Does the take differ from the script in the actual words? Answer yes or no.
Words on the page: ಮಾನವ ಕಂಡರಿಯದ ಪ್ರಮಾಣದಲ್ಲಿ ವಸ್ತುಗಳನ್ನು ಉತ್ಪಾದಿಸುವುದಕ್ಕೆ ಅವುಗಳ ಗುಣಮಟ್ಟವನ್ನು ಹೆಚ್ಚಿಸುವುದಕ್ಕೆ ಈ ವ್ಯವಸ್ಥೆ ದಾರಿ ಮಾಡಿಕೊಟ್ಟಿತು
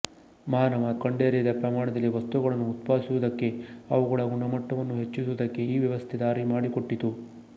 no